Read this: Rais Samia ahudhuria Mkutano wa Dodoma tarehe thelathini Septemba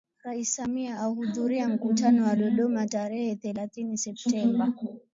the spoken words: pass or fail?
pass